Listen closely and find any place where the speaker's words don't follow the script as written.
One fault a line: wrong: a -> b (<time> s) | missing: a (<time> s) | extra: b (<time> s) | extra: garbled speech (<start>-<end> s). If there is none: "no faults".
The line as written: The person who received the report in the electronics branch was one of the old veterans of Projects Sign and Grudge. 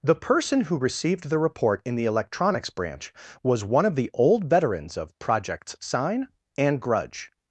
no faults